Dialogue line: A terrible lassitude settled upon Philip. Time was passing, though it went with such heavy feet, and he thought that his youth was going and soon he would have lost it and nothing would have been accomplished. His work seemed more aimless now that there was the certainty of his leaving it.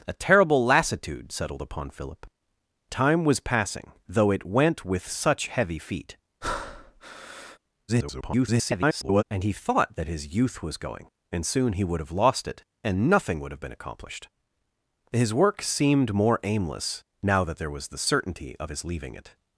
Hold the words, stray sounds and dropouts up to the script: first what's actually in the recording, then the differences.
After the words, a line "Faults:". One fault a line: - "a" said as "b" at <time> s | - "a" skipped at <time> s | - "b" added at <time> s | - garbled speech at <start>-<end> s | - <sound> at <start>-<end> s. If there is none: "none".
A terrible lassitude settled upon Philip. Time was passing, though it went with such heavy feet, [garbled] and he thought that his youth was going and soon he would have lost it and nothing would have been accomplished. His work seemed more aimless now that there was the certainty of his leaving it.
Faults:
- breath at 6.4-7.6 s
- garbled speech at 7.9-9.2 s